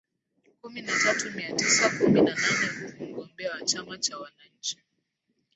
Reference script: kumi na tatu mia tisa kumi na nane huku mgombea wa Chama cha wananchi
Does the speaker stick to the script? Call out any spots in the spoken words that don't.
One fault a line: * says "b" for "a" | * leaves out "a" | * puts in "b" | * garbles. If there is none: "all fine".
all fine